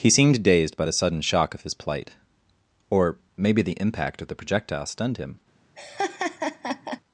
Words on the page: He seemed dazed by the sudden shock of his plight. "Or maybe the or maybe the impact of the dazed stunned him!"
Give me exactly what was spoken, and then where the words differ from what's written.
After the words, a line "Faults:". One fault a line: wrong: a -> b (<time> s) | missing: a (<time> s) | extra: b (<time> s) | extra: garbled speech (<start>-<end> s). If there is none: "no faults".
He seemed dazed by the sudden shock of his plight. "Or maybe the impact of the projectile stunned him!"
Faults:
missing: or maybe the (3.8 s)
wrong: dazed -> projectile (4.4 s)